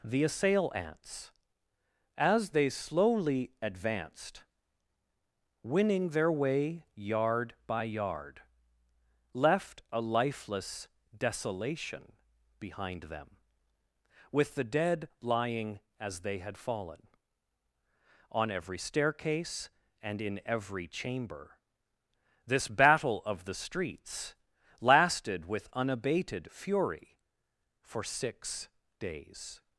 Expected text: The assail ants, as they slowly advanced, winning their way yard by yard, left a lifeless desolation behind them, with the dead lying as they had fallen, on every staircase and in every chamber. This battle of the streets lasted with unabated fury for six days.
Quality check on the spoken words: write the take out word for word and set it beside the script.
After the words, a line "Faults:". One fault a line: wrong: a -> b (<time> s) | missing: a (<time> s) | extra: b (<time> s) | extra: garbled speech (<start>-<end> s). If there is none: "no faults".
The assail ants, as they slowly advanced, winning their way yard by yard, left a lifeless desolation behind them, with the dead lying as they had fallen, on every staircase and in every chamber. This battle of the streets lasted with unabated fury for six days.
Faults:
no faults